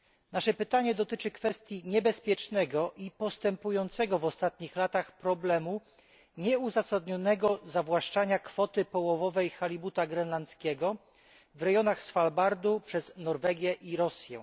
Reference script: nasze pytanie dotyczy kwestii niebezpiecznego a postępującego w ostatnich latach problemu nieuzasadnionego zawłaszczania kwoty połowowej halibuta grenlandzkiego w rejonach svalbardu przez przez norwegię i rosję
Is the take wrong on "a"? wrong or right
wrong